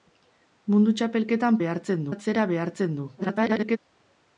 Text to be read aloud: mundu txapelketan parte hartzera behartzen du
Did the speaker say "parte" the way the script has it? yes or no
no